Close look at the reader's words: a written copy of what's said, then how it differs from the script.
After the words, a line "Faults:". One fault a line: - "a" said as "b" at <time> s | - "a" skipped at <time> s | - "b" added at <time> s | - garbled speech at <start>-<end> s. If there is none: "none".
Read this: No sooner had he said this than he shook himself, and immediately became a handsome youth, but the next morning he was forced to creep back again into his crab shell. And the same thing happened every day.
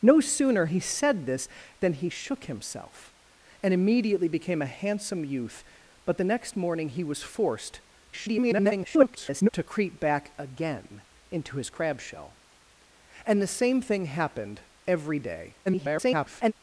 No sooner he said this than he shook himself, and immediately became a handsome youth, but the next morning he was forced [garbled] to creep back again into his crab shell. And the same thing happened every day. [garbled]
Faults:
- "had" skipped at 0.7 s
- garbled speech at 8.1-9.5 s
- garbled speech at 15.7-16.5 s